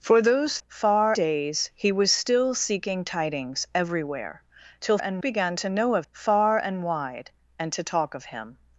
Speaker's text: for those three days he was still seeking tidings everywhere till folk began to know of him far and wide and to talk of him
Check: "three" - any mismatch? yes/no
yes